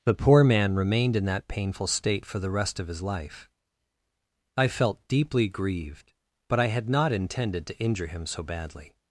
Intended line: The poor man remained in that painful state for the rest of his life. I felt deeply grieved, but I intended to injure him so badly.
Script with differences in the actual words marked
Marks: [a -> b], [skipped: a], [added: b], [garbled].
The poor man remained in that painful state for the rest of his life. I felt deeply grieved, but I [added: had not] intended to injure him so badly.